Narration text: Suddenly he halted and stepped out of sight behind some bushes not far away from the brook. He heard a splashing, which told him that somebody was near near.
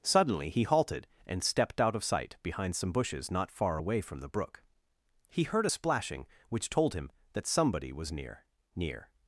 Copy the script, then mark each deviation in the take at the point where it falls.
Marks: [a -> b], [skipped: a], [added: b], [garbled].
Suddenly he halted and stepped out of sight behind some bushes not far away from the brook. He heard a splashing, which told him that somebody was near near.